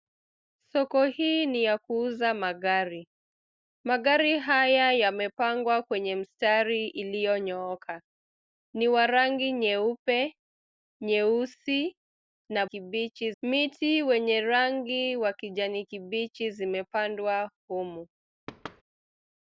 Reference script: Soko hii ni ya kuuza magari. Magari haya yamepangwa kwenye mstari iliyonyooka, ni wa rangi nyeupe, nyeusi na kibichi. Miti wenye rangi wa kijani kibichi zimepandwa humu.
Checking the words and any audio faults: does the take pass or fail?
fail